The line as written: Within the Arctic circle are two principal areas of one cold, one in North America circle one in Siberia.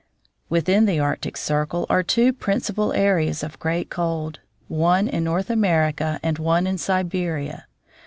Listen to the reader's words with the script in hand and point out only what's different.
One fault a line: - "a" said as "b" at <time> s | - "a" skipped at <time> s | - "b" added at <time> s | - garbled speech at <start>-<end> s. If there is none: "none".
- "one" said as "great" at 3.6 s
- "circle" said as "and" at 6.2 s